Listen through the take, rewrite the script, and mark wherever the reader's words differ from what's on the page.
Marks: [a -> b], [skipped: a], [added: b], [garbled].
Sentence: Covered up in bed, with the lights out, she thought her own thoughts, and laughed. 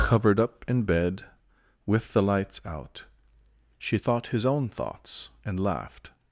Covered up in bed, with the lights out, she thought [her -> his] own thoughts, and laughed.